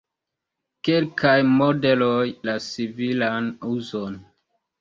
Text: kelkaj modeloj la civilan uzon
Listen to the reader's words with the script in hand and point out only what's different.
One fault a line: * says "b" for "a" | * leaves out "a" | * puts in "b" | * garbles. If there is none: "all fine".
all fine